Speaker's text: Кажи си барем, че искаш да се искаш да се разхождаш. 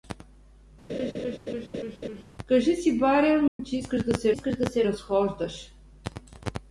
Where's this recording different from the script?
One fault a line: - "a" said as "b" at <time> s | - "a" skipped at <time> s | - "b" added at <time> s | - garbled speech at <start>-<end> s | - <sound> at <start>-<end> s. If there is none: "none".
- laugh at 0.9-2.2 s
- dropout at 3.5-3.6 s